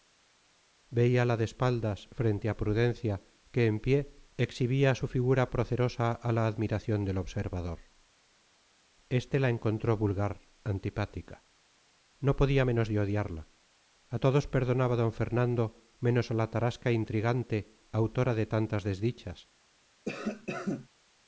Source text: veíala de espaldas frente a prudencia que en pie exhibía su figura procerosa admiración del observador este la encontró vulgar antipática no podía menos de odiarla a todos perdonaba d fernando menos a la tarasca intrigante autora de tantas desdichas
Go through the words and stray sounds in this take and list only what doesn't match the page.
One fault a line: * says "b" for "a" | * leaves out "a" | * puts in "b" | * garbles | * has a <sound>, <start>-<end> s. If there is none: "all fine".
* puts in "a la"
* has a cough, 20.1-20.9 s